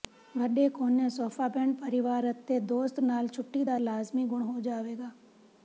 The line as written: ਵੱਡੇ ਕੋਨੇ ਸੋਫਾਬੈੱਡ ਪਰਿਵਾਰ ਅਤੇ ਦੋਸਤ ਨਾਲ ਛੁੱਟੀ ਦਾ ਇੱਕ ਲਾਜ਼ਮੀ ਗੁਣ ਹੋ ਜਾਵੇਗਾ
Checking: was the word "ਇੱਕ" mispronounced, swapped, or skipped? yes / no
yes